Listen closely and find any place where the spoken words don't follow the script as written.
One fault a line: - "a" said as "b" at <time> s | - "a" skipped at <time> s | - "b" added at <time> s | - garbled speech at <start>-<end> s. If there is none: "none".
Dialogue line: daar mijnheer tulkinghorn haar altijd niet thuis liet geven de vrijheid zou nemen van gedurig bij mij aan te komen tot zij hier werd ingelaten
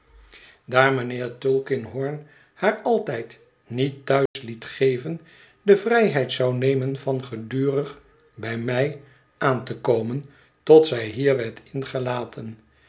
none